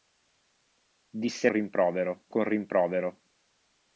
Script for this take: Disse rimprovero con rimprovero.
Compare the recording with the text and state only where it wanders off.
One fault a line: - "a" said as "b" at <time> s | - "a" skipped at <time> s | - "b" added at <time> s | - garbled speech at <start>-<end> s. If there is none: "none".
none